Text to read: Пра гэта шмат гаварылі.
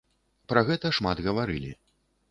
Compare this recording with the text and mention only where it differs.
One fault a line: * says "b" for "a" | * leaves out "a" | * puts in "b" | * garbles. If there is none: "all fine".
all fine